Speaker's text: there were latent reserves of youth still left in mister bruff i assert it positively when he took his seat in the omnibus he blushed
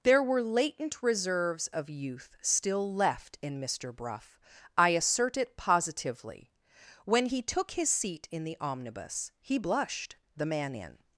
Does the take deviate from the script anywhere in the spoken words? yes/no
yes